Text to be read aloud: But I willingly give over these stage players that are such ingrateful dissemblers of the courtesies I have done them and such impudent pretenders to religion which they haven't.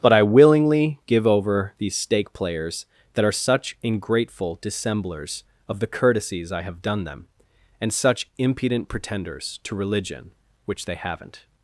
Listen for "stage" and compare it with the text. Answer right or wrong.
wrong